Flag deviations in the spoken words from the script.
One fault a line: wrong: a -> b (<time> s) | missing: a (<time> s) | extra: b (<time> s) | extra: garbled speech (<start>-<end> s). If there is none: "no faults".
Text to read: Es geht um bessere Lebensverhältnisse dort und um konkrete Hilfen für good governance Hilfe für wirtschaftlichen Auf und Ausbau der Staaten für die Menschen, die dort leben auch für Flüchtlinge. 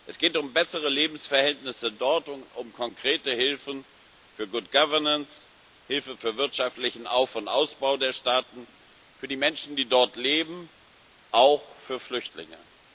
no faults